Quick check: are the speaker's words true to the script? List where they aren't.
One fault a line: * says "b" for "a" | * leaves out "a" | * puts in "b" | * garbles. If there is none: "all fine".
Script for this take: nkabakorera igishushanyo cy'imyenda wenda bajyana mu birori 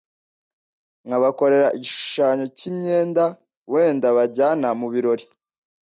all fine